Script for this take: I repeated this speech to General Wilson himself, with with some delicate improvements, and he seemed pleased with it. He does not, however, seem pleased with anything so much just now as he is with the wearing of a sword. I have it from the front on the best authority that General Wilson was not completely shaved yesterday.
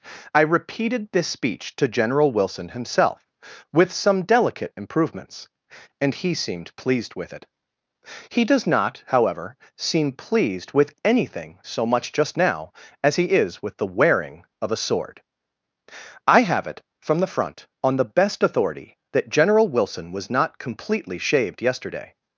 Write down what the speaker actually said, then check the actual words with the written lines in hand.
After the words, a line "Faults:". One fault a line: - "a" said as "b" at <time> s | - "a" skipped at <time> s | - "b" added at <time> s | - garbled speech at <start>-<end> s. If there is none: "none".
I repeated this speech to General Wilson himself, with some delicate improvements, and he seemed pleased with it. He does not, however, seem pleased with anything so much just now as he is with the wearing of a sword. I have it from the front on the best authority that General Wilson was not completely shaved yesterday.
Faults:
- "with" skipped at 3.9 s